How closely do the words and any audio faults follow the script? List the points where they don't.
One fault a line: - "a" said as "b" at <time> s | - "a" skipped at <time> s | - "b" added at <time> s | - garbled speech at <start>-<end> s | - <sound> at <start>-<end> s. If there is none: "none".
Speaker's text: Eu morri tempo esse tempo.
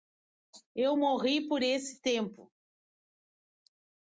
- "tempo" said as "por" at 1.5 s